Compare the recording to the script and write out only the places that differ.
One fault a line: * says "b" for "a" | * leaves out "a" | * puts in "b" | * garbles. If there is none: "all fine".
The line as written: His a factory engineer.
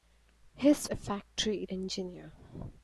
all fine